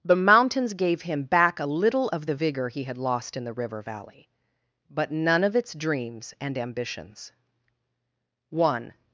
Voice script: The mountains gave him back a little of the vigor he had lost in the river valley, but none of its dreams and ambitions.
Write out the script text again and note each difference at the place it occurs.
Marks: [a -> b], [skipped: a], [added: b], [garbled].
The mountains gave him back a little of the vigor he had lost in the river valley, but none of its dreams and ambitions. [added: One]